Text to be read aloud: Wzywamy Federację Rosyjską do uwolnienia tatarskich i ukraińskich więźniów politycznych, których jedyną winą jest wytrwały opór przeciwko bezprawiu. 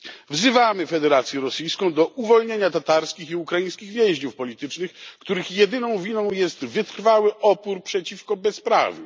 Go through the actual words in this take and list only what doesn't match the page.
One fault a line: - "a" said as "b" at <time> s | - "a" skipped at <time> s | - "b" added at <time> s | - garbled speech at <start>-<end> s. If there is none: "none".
none